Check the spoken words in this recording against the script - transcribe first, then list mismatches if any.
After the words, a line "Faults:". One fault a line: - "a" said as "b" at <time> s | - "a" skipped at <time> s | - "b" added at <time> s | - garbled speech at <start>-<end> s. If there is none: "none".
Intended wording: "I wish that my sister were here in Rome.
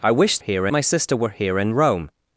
"I wish here my sister were here in Rome.
Faults:
- "that" said as "here" at 0.4 s